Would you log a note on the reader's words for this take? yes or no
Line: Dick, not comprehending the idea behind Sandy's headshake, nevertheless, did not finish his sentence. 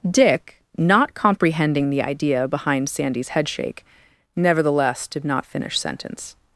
yes